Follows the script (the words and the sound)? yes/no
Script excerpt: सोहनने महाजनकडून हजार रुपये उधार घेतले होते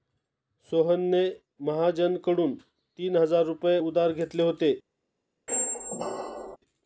no